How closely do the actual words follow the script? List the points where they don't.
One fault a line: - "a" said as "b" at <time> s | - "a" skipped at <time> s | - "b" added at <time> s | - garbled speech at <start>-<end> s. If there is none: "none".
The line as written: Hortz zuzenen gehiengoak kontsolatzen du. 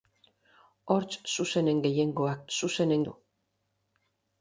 - "kontsolatzen" said as "zuzenen" at 2.6 s